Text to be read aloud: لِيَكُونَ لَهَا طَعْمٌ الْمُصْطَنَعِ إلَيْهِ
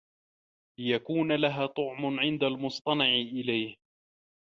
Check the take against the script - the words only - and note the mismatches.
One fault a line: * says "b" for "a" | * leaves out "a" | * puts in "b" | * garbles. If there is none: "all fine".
* puts in "عِنْدَ"